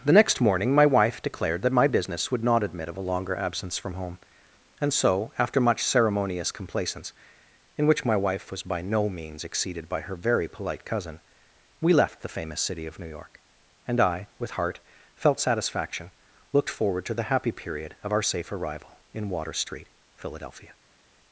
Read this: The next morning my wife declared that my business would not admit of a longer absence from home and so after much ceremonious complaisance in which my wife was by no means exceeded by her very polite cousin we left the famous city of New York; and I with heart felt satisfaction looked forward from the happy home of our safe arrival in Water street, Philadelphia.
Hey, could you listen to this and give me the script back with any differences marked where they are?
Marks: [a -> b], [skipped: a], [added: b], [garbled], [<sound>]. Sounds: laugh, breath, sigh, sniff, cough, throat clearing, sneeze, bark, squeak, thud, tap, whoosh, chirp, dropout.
The next morning my wife declared that my business would not admit of a longer absence from home and so after much ceremonious complaisance in which my wife was by no means exceeded by her very polite cousin we left the famous city of New York; and I with heart felt satisfaction looked forward [from -> to] the happy [home -> period] of our safe arrival in Water street, Philadelphia.